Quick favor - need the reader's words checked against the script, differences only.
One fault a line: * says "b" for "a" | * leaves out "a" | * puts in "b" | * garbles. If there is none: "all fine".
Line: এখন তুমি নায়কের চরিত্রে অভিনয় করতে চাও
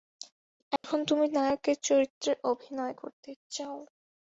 all fine